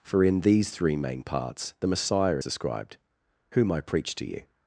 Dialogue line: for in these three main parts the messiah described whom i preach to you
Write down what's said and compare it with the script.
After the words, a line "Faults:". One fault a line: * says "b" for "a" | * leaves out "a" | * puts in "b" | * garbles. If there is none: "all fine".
for in these three main parts the messiah described whom i preach to you
Faults:
all fine